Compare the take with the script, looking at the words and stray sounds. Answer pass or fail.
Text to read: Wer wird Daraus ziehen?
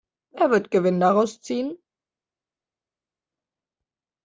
fail